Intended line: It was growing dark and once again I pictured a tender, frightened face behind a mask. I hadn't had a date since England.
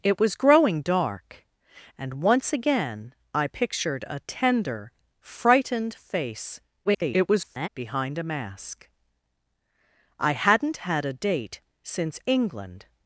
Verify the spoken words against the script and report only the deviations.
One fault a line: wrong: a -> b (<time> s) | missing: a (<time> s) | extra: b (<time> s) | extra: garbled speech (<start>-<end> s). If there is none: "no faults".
extra: garbled speech (6.8-7.7 s)